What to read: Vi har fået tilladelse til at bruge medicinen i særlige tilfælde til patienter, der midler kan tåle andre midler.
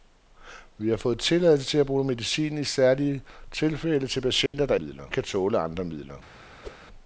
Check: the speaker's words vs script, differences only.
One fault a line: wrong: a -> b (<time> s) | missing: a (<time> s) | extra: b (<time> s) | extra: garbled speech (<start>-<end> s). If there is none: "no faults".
no faults